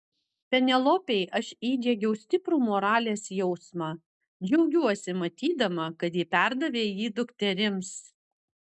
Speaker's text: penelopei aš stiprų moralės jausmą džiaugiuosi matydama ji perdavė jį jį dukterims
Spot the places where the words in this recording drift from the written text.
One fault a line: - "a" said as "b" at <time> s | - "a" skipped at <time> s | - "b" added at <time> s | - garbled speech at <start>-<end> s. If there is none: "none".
- "įdiegiau" added at 1.7 s
- "kad" added at 6.0 s
- "jį" skipped at 7.2 s